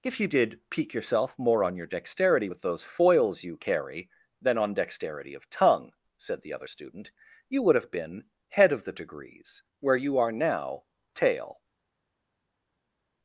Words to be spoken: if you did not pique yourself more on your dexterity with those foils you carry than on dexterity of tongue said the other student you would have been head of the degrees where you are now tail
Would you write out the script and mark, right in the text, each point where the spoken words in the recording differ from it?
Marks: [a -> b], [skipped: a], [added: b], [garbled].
if you did [skipped: not] pique yourself more on your dexterity with those foils you carry than on dexterity of tongue said the other student you would have been head of the degrees where you are now tail